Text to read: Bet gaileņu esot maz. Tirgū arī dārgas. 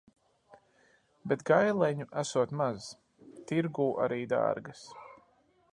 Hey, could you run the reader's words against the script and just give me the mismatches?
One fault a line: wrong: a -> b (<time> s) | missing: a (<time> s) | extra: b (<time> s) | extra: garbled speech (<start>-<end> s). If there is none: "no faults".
no faults